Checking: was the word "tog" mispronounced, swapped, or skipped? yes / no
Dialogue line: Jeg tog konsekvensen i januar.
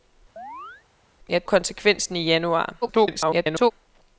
yes